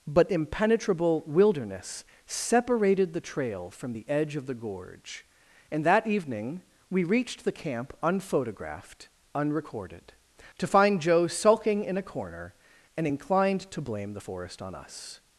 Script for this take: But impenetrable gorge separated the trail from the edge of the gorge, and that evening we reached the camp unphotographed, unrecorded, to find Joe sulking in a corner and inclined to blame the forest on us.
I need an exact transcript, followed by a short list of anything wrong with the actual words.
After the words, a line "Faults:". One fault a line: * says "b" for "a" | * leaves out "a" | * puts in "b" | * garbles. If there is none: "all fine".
But impenetrable wilderness separated the trail from the edge of the gorge, and that evening we reached the camp unphotographed, unrecorded, to find Joe sulking in a corner and inclined to blame the forest on us.
Faults:
* says "wilderness" for "gorge"